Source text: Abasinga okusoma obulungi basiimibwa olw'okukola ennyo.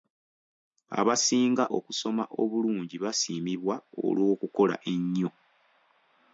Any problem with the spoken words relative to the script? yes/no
no